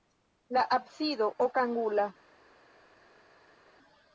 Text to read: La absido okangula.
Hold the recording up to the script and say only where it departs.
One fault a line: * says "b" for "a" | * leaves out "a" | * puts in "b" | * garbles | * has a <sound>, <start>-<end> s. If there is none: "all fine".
all fine